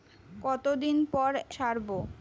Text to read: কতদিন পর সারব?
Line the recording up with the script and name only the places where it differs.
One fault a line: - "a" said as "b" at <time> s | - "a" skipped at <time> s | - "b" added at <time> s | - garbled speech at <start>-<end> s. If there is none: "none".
none